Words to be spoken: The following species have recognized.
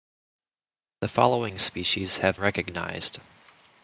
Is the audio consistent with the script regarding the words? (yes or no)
yes